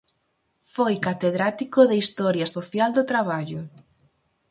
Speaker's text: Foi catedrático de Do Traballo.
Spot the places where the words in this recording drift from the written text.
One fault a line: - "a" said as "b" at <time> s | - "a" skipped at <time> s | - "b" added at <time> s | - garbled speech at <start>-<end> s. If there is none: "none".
- "Historia Social" added at 2.0 s